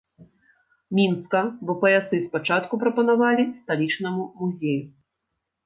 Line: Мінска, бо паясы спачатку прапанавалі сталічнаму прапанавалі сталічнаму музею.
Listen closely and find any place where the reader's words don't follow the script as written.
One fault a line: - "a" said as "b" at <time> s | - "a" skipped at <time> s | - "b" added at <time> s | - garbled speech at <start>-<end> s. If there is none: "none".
- "прапанавалі сталічнаму" skipped at 4.2 s